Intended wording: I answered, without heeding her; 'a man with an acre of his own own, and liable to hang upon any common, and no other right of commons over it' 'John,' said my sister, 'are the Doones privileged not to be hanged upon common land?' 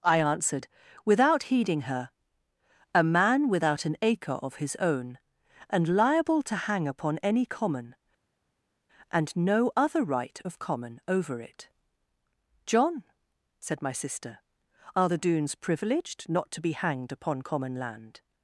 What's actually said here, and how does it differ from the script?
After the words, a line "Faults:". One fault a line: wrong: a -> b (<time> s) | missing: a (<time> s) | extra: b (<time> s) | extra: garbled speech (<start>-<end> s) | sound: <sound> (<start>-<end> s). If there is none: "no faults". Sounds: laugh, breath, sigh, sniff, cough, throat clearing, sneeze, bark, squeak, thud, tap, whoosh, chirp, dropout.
I answered, without heeding her; 'a man without an acre of his own, and liable to hang upon any common, and no other right of common over it' 'John,' said my sister, 'are the Doones privileged not to be hanged upon common land?'
Faults:
wrong: with -> without (3.5 s)
missing: own (5.2 s)
wrong: commons -> common (10.6 s)